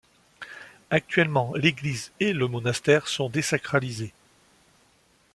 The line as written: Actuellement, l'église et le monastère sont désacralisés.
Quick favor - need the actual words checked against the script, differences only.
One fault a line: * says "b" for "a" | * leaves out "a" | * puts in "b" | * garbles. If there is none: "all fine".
all fine